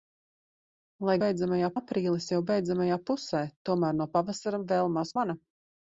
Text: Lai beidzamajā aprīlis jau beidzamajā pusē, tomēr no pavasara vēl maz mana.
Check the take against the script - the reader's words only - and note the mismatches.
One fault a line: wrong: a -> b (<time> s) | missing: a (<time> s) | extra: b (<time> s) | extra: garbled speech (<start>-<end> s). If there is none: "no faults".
no faults